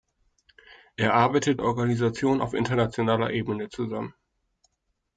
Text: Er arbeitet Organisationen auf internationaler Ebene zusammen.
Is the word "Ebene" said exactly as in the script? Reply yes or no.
yes